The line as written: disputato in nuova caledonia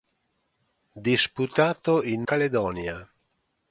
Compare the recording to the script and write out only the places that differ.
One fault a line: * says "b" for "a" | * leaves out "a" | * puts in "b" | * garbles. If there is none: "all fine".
* leaves out "nuova"